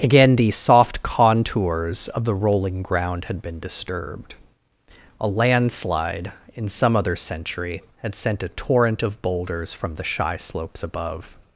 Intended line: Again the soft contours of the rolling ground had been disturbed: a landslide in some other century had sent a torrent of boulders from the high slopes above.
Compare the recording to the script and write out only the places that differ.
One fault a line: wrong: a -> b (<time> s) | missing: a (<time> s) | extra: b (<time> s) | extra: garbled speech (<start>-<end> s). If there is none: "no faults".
wrong: high -> shy (10.0 s)